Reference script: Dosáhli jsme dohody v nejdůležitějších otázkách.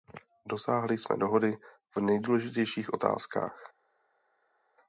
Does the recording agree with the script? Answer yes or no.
yes